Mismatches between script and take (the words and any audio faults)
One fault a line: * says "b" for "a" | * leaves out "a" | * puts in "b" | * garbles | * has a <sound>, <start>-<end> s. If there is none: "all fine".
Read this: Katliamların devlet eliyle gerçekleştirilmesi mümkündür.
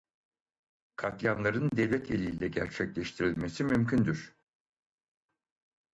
all fine